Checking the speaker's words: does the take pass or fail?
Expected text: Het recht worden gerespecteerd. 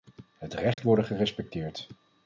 pass